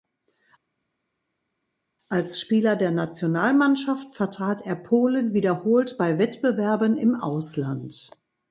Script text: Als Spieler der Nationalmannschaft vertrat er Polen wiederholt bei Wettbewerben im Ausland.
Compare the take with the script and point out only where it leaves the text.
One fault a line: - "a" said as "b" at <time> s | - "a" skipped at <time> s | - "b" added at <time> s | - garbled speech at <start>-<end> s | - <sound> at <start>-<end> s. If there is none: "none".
none